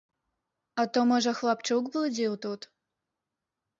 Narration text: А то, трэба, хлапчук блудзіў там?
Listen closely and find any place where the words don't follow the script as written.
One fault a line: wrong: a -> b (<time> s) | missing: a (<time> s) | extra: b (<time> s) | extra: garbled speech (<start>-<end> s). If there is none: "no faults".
wrong: трэба -> можа (1.1 s)
wrong: там -> тут (2.5 s)